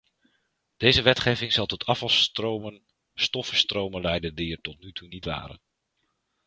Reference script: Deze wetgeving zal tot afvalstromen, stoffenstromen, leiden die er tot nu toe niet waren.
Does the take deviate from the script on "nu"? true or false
false